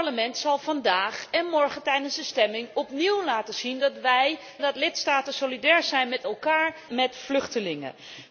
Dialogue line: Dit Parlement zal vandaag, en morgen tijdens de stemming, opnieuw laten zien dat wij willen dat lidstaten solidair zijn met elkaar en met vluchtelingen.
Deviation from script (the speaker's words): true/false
true